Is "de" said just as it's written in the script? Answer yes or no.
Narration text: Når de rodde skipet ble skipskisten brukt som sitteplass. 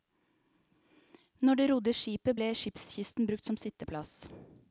yes